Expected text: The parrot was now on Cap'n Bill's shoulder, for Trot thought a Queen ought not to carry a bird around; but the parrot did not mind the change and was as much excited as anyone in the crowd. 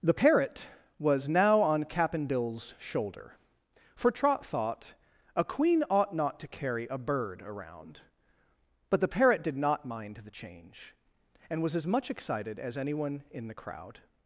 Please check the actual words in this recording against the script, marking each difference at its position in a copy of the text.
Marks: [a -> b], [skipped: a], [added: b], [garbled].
The parrot was now on Cap'n Bill's shoulder, for Trot thought a Queen ought not to carry a bird around; but the parrot did not mind the change and was as much excited as anyone in the crowd.